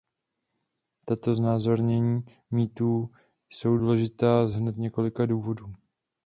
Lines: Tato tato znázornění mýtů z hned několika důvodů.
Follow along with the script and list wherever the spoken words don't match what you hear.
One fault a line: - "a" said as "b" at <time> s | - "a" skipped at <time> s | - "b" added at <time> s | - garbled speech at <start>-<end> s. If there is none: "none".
- "tato" skipped at 1.4 s
- "jsou důležitá" added at 3.5 s